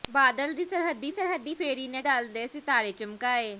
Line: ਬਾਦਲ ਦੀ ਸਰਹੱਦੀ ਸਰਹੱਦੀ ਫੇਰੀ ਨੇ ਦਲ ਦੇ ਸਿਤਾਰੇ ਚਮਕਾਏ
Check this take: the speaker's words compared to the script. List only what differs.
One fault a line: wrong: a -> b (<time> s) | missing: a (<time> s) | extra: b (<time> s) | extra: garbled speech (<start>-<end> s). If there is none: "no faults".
no faults